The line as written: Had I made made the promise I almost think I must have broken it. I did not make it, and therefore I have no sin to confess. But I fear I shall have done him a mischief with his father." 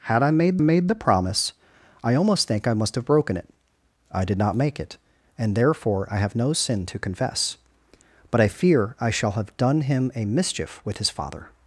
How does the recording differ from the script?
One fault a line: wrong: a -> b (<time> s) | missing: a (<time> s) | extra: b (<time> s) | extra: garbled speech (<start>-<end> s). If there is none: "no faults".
no faults